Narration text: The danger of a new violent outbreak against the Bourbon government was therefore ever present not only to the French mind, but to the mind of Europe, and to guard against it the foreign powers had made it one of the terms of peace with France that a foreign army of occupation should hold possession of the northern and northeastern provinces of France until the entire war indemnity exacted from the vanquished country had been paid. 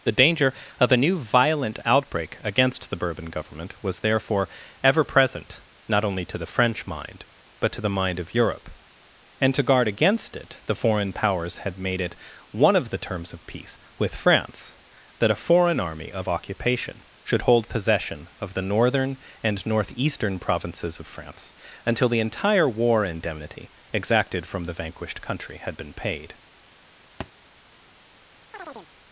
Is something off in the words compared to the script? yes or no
no